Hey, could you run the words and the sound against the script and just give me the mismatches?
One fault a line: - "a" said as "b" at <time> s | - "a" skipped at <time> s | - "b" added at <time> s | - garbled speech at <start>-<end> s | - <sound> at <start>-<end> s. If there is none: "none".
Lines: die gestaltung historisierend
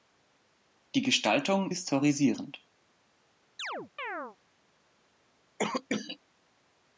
- chirp at 3.6-4.4 s
- cough at 5.6-6.2 s